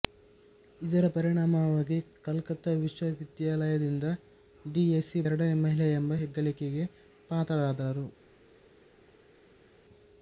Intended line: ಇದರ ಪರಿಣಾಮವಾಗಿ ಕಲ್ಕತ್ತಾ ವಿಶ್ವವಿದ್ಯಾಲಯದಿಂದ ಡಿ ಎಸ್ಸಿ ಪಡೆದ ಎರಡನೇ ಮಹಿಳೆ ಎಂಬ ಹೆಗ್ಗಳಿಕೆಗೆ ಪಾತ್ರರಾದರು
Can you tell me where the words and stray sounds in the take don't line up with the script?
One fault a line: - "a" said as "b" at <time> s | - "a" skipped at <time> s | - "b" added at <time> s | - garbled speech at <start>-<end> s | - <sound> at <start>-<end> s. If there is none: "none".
- "ಪಡೆದ" skipped at 5.2 s